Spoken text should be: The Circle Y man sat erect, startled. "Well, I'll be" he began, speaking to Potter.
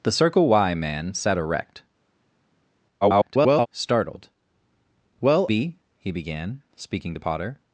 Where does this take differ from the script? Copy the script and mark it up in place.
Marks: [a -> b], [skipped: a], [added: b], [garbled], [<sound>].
The Circle Y man sat erect, [garbled] startled. "Well, [skipped: I'll] be" he began, speaking to Potter.